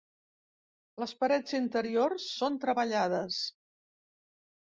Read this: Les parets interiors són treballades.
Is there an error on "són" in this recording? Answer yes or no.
no